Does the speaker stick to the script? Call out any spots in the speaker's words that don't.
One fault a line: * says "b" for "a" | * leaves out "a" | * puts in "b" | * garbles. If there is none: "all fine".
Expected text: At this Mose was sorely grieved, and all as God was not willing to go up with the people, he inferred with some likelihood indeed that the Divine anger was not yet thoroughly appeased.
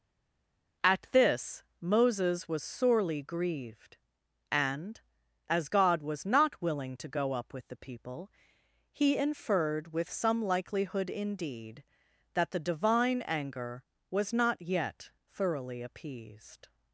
* says "Moses" for "Mose"
* leaves out "all"